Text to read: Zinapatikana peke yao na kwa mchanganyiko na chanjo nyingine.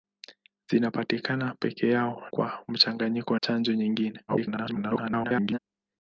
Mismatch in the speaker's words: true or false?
true